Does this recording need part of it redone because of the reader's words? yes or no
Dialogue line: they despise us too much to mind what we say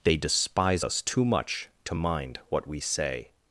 no